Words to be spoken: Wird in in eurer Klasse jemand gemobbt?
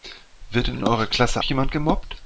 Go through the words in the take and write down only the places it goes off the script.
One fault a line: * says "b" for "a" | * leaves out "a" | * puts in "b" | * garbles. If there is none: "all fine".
all fine